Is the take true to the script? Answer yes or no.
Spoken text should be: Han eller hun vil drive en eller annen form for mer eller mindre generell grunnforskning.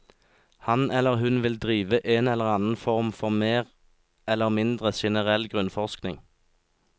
yes